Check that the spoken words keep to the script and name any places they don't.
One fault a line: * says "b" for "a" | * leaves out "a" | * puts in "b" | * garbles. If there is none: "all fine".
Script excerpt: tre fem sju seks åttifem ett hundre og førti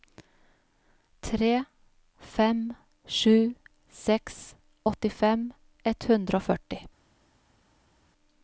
all fine